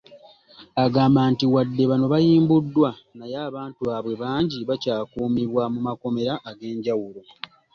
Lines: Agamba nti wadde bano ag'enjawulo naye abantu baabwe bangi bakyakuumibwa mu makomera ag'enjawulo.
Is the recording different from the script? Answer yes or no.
yes